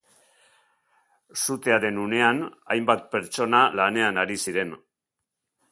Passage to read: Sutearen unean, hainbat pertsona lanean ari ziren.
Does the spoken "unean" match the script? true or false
true